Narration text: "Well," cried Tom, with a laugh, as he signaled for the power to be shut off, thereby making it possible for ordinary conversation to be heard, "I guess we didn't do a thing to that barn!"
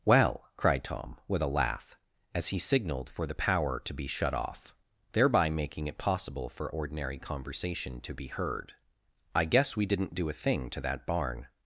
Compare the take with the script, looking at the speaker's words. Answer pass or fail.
pass